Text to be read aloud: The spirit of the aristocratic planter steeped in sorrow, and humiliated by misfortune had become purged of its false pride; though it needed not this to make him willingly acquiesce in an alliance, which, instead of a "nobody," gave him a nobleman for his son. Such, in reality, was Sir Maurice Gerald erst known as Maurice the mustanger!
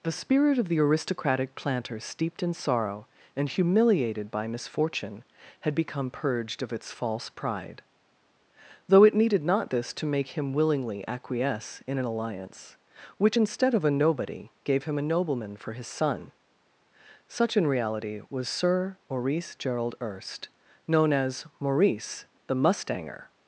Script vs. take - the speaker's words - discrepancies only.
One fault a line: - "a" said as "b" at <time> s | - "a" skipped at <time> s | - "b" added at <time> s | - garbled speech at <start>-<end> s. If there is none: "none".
none